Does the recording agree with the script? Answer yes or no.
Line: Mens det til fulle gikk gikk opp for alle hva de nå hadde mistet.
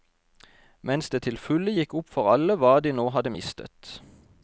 no